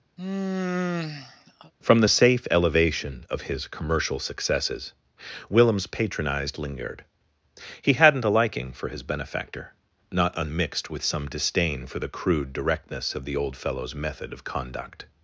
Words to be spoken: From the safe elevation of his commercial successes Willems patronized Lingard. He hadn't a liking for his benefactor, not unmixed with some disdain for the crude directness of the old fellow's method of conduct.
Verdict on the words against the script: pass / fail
pass